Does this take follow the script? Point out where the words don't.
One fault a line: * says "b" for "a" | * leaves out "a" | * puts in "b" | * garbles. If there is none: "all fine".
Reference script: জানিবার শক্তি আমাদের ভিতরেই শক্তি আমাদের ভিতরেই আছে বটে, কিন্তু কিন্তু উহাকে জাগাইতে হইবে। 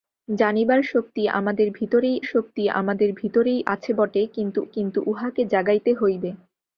all fine